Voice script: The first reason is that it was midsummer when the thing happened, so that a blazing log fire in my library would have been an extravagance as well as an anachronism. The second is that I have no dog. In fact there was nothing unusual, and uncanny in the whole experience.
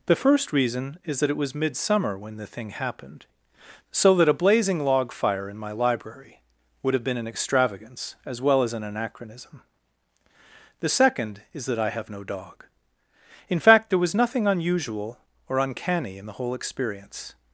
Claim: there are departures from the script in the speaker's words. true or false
true